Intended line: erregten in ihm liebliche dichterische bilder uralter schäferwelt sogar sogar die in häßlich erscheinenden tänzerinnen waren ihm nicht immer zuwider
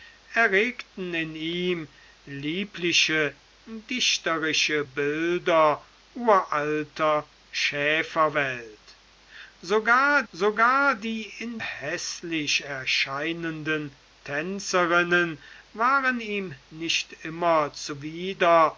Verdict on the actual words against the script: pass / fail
pass